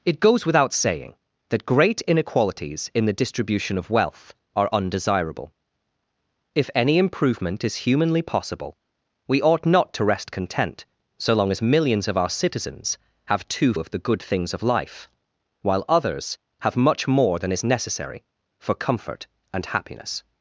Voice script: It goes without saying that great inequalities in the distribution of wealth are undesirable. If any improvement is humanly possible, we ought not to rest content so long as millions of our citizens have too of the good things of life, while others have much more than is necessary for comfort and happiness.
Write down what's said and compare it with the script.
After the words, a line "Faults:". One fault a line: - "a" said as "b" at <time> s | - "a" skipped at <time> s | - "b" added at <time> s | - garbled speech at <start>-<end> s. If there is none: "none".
It goes without saying that great inequalities in the distribution of wealth are undesirable. If any improvement is humanly possible, we ought not to rest content so long as millions of our citizens have too of the good things of life, while others have much more than is necessary for comfort and happiness.
Faults:
none